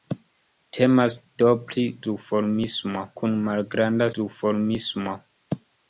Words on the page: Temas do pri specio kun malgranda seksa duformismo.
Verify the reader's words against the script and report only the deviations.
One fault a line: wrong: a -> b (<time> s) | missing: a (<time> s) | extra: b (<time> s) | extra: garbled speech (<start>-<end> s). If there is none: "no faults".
wrong: specio -> duformismo (2.1 s)
missing: seksa (4.1 s)